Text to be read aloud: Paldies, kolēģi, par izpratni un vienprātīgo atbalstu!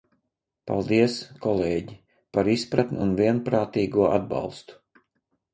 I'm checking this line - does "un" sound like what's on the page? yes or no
yes